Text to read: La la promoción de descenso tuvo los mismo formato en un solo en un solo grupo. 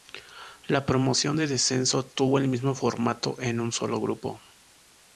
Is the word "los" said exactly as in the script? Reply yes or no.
no